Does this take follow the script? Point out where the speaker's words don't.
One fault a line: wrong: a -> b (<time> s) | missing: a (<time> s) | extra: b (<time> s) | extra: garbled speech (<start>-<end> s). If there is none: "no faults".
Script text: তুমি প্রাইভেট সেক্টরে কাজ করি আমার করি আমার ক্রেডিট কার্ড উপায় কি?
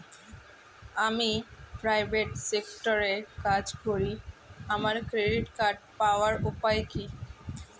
wrong: তুমি -> আমি (1.1 s)
missing: করি আমার (5.0 s)
extra: পাওয়ার (6.0 s)